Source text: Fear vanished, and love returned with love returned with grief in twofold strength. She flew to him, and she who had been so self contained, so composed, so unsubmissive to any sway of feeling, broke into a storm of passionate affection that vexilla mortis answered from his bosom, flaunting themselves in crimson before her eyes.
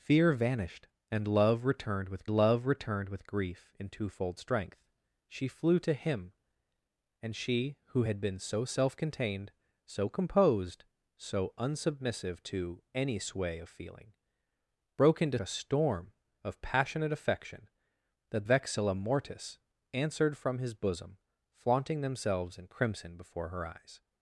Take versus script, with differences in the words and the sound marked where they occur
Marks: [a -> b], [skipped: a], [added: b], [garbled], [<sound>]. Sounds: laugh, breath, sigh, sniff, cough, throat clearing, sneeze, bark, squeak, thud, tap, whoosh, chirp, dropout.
Fear vanished, and love returned with love returned with grief in twofold strength. She flew to him, and she who had been so self contained, so composed, so unsubmissive to any sway of feeling, broke into a storm of passionate affection that vexilla mortis answered from his bosom, flaunting themselves in crimson before her eyes.